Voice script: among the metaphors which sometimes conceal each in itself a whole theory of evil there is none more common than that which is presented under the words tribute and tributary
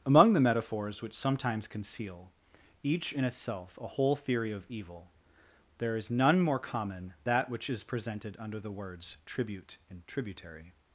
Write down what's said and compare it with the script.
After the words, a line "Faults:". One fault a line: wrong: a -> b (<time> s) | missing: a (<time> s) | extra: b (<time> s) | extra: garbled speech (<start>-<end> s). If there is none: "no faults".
among the metaphors which sometimes conceal each in itself a whole theory of evil there is none more common that which is presented under the words tribute and tributary
Faults:
missing: than (7.1 s)